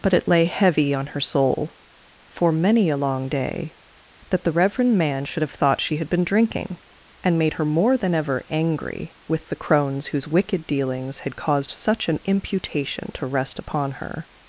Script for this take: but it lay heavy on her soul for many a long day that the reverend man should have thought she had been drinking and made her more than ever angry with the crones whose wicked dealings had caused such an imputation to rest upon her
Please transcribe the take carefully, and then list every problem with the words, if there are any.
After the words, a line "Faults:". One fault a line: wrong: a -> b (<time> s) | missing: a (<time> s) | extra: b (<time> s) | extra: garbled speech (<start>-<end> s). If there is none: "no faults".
but it lay heavy on her soul for many a long day that the reverend man should have thought she had been drinking and made her more than ever angry with the crones whose wicked dealings had caused such an imputation to rest upon her
Faults:
no faults